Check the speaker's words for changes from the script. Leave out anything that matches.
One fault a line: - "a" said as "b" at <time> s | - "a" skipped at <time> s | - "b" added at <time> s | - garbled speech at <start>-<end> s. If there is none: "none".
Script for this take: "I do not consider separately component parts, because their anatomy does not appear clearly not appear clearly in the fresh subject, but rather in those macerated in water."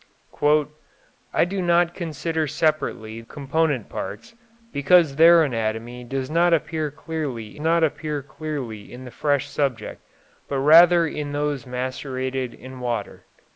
none